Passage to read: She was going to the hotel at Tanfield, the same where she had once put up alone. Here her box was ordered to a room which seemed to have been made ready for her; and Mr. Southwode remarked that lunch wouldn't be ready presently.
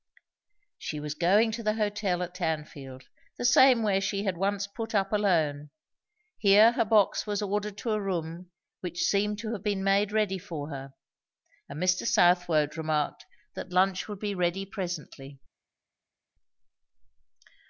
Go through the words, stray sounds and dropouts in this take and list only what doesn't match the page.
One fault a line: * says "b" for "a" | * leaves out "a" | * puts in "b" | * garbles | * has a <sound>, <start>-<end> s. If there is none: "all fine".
* says "would" for "wouldn't"